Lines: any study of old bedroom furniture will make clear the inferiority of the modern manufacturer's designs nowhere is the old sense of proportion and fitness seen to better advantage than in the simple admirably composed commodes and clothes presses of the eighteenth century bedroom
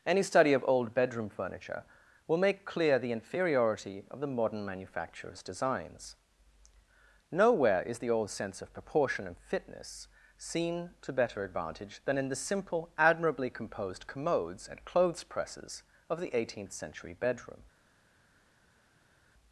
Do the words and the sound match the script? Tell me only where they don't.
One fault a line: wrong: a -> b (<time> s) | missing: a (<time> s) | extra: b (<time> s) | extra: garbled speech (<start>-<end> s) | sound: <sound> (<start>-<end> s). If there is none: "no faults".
no faults